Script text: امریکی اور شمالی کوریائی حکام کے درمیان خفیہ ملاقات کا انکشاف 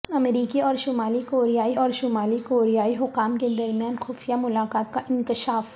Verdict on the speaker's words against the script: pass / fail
fail